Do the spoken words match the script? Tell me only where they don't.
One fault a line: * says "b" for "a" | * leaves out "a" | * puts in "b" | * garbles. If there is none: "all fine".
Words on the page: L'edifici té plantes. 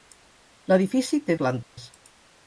all fine